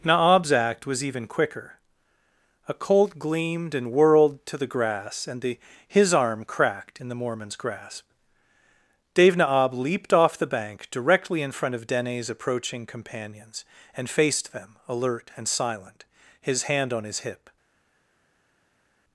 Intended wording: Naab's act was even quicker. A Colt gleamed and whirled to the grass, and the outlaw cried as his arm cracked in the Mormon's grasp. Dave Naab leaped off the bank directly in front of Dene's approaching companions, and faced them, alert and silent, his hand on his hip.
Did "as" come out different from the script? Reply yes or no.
yes